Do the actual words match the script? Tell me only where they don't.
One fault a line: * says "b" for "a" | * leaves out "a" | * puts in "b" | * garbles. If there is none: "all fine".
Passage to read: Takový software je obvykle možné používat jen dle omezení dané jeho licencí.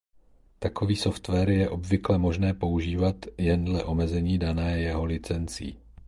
all fine